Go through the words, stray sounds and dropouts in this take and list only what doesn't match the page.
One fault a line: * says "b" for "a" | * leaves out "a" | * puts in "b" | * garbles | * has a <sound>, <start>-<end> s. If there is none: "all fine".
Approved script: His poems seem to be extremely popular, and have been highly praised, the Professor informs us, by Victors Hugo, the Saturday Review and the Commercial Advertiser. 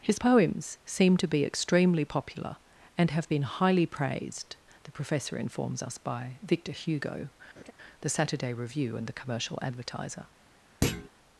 * says "Victor" for "Victors"
* has a laugh, 7.6-7.7 s
* has a thud, 10.8-11.1 s